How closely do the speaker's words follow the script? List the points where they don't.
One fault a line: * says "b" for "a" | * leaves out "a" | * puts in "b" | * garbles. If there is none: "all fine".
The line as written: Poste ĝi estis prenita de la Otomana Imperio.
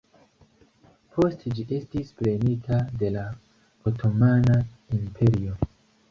all fine